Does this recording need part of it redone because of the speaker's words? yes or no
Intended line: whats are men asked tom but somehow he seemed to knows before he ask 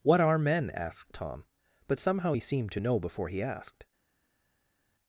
yes